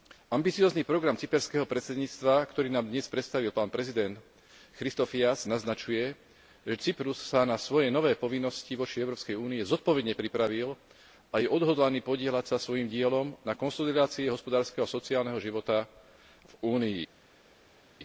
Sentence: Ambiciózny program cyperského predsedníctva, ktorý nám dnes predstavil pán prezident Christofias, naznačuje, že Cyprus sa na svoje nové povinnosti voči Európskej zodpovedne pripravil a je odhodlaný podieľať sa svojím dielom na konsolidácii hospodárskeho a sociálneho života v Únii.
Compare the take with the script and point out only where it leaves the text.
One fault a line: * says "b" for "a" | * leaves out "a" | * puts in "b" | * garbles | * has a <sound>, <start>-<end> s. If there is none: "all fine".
* puts in "únii"